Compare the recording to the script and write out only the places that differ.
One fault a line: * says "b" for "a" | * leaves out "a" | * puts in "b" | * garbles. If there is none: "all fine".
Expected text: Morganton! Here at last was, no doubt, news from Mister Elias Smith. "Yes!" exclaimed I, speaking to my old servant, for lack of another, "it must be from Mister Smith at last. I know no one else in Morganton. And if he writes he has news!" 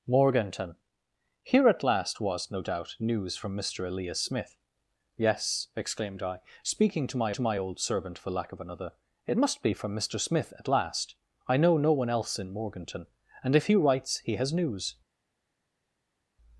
* puts in "to my"